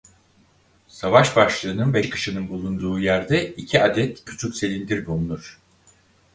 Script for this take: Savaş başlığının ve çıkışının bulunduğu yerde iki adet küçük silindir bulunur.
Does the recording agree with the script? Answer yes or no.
yes